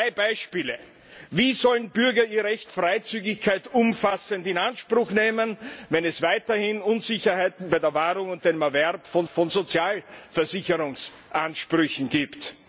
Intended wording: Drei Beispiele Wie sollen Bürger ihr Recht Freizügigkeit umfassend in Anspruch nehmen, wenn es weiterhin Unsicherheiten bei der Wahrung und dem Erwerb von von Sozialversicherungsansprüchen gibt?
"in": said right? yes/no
yes